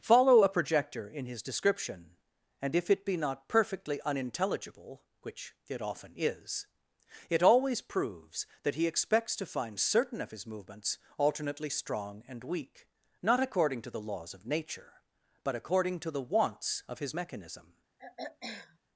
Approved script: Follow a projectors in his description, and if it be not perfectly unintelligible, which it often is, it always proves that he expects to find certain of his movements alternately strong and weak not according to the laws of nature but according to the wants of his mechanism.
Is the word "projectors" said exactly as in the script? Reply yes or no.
no